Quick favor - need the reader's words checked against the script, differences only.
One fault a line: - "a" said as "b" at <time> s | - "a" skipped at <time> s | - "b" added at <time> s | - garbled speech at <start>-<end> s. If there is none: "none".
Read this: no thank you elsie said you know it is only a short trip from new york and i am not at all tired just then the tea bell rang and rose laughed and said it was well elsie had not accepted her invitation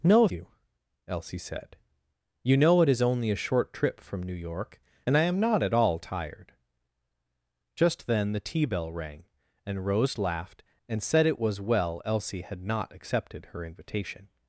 - "thank" skipped at 0.3 s